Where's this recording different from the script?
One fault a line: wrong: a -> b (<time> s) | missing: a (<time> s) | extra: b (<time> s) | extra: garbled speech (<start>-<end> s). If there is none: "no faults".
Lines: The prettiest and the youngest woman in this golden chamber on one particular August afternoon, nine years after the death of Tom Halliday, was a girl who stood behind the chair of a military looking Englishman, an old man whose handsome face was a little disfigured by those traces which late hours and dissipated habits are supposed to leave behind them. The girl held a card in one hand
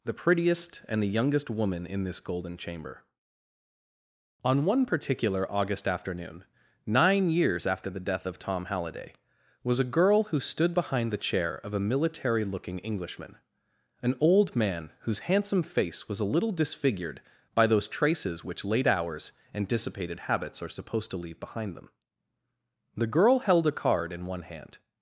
no faults